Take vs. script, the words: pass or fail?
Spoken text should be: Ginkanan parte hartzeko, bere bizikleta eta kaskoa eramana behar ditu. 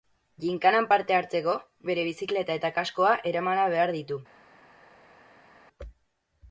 pass